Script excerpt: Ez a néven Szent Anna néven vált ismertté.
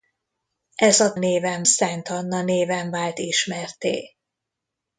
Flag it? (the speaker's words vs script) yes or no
no